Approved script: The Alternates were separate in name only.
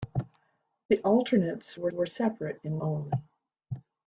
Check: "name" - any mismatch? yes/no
yes